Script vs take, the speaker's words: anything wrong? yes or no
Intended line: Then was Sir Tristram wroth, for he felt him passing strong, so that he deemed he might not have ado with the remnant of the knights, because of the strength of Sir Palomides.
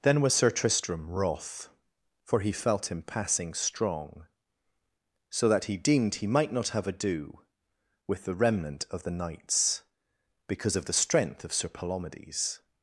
no